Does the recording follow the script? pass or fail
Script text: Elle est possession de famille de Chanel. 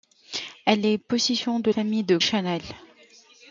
pass